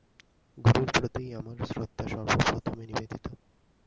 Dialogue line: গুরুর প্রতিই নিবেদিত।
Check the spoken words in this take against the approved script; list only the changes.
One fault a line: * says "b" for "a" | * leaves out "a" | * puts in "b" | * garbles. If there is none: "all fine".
* puts in "আমার শ্রদ্ধা সর্বপ্রথমে"